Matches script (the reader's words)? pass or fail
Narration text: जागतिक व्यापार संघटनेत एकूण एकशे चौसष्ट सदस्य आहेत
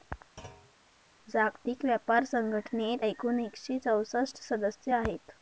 pass